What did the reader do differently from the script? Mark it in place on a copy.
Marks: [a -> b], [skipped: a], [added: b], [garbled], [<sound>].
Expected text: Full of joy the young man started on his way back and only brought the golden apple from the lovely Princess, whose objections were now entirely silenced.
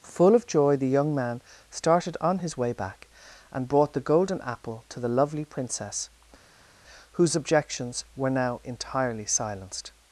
Full of joy the young man started on his way back and [skipped: only] brought the golden apple [from -> to] the lovely Princess, whose objections were now entirely silenced.